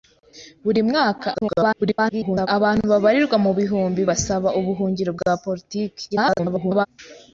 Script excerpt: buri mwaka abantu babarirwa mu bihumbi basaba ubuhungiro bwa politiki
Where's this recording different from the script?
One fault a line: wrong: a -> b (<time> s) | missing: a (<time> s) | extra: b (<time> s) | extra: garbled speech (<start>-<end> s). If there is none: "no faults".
extra: garbled speech (1.3-2.5 s)
extra: garbled speech (6.1-6.9 s)